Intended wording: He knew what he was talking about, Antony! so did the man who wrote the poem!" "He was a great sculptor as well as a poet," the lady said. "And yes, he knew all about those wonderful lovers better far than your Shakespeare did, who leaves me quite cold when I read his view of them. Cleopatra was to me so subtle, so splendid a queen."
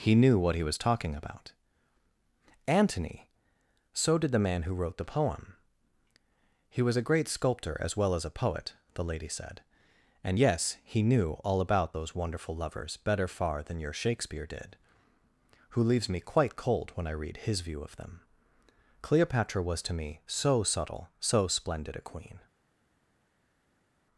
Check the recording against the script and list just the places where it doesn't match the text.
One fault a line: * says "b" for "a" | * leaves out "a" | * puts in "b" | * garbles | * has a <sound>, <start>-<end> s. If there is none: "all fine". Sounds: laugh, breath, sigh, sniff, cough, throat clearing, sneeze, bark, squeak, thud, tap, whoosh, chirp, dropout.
all fine